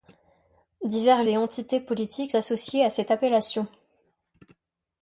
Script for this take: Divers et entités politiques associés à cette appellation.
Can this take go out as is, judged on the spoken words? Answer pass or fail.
pass